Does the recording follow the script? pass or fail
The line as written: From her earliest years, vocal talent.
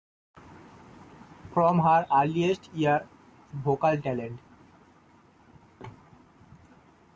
pass